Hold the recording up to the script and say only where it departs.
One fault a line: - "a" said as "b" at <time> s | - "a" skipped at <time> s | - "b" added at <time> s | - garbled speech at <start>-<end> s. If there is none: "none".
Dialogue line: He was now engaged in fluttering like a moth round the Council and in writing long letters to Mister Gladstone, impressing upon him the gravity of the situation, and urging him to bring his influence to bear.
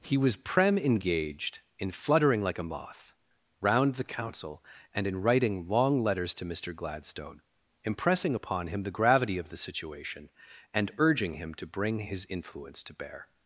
- "now" said as "prem" at 0.3 s